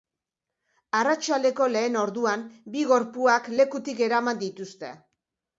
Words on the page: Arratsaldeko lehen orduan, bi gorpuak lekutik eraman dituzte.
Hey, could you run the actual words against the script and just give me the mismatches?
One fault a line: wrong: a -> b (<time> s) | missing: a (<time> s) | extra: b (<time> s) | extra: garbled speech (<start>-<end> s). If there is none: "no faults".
no faults